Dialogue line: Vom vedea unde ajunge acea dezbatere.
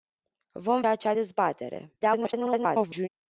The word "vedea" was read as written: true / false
false